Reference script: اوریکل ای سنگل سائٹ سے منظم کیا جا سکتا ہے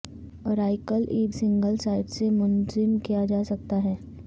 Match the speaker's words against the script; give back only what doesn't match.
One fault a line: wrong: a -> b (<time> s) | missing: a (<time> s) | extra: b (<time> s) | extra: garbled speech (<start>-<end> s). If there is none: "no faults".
no faults